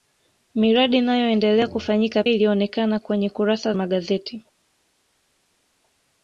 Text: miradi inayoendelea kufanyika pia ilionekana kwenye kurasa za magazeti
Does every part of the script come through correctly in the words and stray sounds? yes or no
no